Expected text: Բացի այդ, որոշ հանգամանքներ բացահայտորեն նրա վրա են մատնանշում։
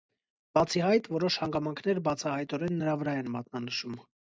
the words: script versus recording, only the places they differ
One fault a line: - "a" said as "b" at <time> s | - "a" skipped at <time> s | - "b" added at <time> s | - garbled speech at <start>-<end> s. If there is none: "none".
none